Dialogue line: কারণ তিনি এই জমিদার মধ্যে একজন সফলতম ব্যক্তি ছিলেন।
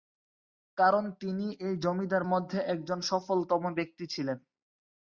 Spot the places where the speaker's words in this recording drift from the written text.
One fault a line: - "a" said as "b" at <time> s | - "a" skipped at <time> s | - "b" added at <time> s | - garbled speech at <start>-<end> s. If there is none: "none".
none